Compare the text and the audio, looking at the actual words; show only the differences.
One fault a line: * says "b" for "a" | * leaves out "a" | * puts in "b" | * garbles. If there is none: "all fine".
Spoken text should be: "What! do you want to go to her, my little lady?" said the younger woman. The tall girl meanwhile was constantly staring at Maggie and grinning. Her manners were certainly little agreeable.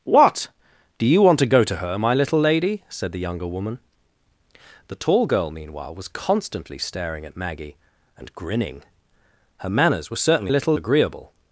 all fine